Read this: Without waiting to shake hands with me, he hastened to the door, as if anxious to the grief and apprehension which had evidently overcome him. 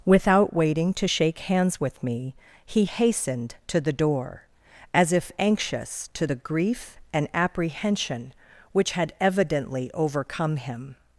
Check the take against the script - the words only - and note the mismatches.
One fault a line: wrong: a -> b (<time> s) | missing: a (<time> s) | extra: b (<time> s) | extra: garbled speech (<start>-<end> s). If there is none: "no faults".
no faults